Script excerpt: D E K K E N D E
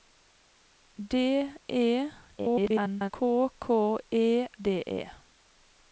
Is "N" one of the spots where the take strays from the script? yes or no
yes